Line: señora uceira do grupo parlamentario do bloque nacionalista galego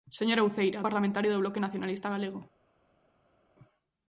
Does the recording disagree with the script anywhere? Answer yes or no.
yes